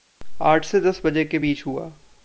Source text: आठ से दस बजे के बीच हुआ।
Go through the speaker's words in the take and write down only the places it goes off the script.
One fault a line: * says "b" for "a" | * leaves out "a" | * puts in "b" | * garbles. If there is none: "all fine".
all fine